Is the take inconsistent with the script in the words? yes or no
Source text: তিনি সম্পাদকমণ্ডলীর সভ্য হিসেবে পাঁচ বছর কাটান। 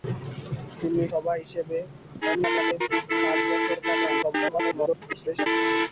yes